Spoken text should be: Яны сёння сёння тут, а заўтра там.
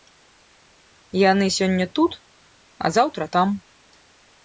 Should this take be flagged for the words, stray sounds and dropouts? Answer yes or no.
yes